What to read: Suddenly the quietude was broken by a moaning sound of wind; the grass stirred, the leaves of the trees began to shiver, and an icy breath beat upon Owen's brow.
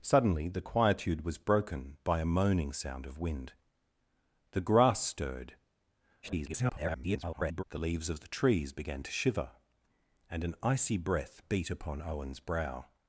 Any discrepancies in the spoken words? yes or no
yes